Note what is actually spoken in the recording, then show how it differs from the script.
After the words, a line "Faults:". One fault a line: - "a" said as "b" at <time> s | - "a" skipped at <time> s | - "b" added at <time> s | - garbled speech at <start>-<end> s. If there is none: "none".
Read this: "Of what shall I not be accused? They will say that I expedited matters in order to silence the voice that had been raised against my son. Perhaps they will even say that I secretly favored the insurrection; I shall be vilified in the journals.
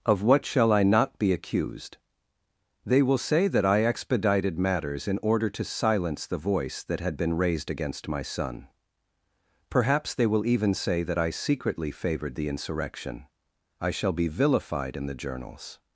"Of what shall I not be accused? They will say that I expedited matters in order to silence the voice that had been raised against my son. Perhaps they will even say that I secretly favored the insurrection; I shall be vilified in the journals.
Faults:
none